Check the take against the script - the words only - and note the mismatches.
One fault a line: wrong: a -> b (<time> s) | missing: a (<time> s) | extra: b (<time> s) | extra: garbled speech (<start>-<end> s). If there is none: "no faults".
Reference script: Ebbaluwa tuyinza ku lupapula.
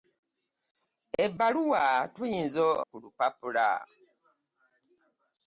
no faults